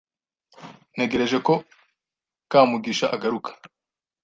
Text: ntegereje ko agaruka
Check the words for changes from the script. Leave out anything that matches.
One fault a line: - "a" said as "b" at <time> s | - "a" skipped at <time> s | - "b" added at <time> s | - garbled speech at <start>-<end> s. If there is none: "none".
- "kamugisha" added at 2.5 s